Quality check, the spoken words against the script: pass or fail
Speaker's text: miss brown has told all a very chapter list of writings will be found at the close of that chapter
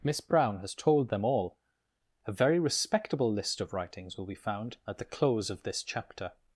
fail